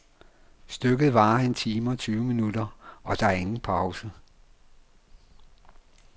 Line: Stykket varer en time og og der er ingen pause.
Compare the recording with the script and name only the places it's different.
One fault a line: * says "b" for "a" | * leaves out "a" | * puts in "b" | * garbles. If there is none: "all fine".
* puts in "tyve minutter"